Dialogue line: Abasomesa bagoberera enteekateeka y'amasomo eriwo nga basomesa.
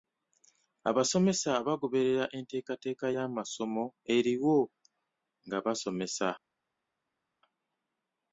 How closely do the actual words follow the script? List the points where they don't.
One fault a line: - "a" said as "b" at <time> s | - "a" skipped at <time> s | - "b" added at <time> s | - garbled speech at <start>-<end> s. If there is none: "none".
none